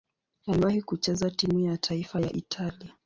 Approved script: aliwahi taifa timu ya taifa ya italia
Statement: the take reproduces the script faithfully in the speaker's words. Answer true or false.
false